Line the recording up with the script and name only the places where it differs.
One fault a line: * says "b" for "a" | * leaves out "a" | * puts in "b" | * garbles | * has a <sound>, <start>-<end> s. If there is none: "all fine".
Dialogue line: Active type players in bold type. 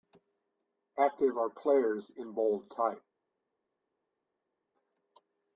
* says "are" for "type"